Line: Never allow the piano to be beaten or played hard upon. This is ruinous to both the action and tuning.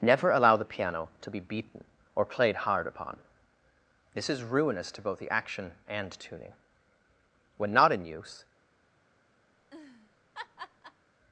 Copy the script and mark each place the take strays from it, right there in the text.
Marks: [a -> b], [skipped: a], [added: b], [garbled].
Never allow the piano to be beaten or played hard upon. This is ruinous to both the action and tuning. [added: When not in use]